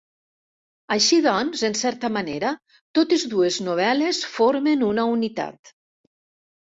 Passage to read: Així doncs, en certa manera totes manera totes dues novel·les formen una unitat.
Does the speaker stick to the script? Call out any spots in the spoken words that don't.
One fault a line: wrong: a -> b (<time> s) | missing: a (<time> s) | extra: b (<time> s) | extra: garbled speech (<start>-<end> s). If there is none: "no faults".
missing: manera totes (3.3 s)